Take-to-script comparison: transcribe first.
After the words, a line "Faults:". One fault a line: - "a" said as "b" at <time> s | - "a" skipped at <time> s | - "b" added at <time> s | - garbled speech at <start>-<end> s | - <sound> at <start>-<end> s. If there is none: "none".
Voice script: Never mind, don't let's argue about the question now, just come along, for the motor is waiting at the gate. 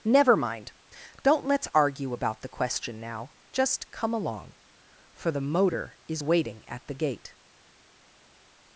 Never mind, don't let's argue about the question now, just come along, for the motor is waiting at the gate.
Faults:
none